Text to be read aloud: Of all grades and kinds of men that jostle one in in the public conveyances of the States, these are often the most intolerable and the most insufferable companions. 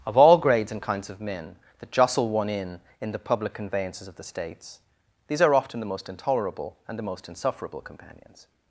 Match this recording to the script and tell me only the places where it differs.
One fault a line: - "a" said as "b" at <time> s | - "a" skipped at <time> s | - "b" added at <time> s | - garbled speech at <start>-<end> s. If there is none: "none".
none